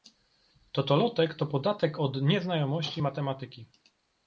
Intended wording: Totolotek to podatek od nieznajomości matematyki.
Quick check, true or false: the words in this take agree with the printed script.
true